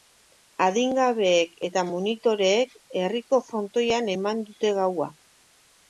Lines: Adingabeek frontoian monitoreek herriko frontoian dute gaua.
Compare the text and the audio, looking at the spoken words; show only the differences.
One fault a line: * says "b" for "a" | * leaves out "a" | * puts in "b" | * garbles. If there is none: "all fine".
* says "eta" for "frontoian"
* puts in "eman"